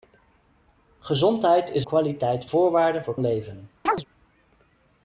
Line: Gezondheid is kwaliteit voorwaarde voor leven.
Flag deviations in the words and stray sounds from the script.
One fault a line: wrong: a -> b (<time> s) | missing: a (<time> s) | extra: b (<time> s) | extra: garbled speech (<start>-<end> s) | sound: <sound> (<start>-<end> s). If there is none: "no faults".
sound: chirp (3.9-4.1 s)